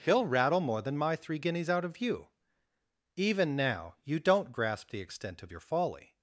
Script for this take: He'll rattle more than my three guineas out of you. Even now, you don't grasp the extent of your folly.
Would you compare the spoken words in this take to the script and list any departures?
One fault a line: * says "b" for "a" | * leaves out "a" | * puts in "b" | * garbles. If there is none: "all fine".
all fine